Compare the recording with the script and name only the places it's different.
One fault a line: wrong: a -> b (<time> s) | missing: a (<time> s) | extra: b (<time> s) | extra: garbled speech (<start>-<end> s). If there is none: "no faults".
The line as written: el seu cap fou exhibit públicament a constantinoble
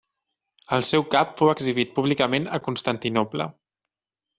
no faults